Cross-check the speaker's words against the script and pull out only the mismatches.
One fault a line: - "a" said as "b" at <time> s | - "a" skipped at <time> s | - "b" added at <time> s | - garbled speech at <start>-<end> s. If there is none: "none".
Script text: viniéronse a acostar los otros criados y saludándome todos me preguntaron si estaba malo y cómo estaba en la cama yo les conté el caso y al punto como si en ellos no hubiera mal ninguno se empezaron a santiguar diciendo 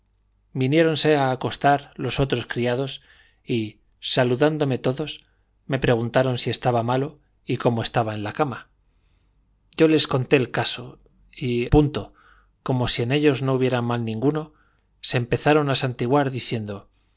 - "al" skipped at 11.7 s